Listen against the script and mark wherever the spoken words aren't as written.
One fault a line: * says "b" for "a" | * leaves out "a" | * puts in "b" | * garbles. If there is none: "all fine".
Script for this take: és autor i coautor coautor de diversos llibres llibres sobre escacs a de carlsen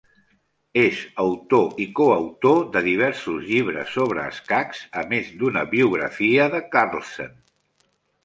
* leaves out "coautor"
* leaves out "llibres"
* puts in "més d'una biografia"